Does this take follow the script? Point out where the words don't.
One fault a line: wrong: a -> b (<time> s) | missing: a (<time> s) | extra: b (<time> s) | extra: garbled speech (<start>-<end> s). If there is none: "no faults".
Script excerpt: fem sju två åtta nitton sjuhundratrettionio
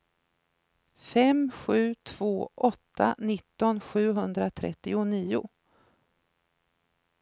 no faults